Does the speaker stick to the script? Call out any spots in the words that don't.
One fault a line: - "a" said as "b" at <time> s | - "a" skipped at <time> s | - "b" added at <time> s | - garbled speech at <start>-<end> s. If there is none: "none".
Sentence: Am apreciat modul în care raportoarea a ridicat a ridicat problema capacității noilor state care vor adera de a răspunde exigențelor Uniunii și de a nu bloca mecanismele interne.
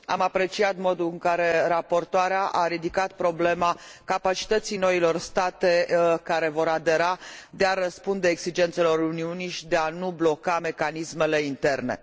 - "a ridicat" skipped at 3.1 s